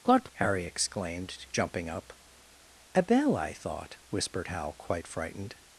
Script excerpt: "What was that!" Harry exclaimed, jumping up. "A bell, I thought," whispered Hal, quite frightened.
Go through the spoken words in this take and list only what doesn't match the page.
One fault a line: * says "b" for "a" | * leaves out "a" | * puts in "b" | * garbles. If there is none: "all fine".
* leaves out "was that"